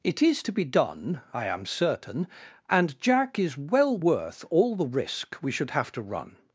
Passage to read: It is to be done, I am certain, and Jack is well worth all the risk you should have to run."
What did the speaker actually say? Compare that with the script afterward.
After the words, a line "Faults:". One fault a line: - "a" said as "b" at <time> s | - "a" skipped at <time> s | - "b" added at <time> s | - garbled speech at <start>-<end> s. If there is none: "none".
It is to be done, I am certain, and Jack is well worth all the risk we should have to run."
Faults:
- "you" said as "we" at 5.4 s